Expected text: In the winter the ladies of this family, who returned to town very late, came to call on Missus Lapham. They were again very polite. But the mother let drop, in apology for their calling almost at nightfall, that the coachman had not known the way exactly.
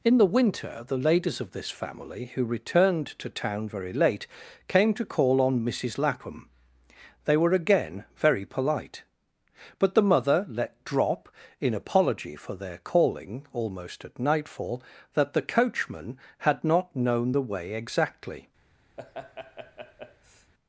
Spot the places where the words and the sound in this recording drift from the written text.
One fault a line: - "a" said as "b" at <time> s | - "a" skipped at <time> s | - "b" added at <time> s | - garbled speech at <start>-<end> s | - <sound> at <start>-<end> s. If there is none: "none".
- laugh at 19.0-20.5 s